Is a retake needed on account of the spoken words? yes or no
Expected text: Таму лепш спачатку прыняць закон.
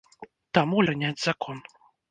yes